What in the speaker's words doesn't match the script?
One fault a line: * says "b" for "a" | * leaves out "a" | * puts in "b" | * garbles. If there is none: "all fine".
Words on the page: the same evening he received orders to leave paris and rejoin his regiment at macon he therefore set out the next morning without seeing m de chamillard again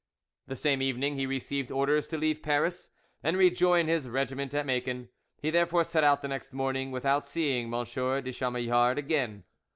all fine